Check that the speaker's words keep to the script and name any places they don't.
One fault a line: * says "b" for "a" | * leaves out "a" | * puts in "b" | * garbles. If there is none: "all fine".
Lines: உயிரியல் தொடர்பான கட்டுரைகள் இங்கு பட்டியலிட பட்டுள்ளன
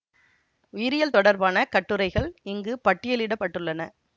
all fine